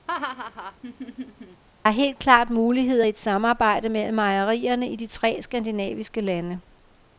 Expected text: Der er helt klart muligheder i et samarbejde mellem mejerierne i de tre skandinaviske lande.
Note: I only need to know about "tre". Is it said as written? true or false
true